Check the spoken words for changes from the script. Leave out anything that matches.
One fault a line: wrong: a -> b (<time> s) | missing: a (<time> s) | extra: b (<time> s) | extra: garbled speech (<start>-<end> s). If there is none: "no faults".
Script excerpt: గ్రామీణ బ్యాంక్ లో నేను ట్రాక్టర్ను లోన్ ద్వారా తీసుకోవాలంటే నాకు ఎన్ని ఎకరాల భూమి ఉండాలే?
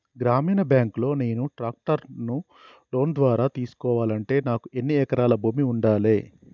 no faults